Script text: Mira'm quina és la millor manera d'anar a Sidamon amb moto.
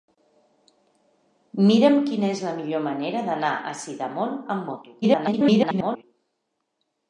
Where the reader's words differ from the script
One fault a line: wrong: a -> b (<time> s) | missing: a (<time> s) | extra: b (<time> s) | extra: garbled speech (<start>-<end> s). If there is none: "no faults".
extra: garbled speech (5.0-6.0 s)